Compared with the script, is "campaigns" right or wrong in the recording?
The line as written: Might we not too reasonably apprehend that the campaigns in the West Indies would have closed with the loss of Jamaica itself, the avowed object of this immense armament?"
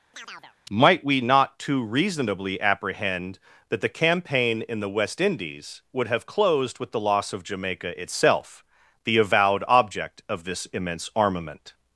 wrong